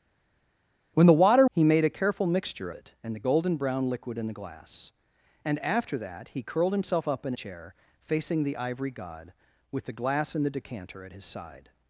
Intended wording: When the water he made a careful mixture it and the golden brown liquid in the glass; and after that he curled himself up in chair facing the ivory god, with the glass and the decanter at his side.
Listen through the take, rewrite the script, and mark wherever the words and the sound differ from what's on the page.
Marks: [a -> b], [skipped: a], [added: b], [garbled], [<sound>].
When the water he made a careful mixture it and the golden brown liquid in the glass; and after that he curled himself up in chair facing the ivory god, with the glass and the decanter at his side.